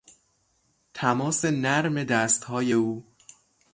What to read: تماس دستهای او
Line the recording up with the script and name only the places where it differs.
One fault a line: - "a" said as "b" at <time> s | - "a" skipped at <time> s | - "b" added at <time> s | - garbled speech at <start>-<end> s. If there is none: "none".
- "نرم" added at 1.4 s